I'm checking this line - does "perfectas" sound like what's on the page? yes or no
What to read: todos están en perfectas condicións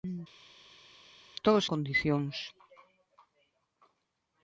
no